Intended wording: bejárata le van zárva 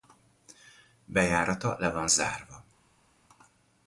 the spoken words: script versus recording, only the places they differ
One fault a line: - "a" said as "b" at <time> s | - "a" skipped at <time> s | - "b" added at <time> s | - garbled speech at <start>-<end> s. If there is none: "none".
none